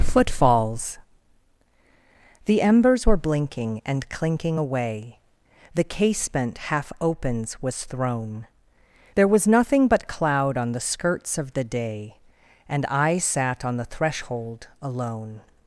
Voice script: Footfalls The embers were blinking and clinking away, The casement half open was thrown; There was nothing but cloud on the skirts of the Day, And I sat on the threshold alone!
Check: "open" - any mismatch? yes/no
yes